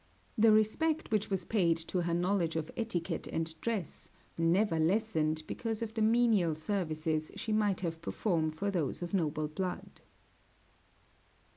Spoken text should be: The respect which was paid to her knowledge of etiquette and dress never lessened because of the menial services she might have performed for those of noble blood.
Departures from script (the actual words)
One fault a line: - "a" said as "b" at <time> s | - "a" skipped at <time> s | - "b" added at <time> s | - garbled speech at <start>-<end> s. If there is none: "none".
none